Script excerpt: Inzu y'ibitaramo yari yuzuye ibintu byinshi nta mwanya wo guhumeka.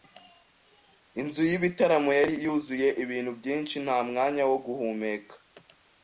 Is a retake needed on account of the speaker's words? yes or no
no